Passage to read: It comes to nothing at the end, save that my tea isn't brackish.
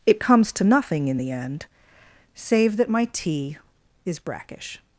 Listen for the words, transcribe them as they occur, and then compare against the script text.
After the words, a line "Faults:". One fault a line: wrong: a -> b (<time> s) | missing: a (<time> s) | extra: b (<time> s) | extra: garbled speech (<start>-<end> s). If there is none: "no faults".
It comes to nothing in the end, save that my tea is brackish.
Faults:
wrong: at -> in (1.1 s)
wrong: isn't -> is (4.1 s)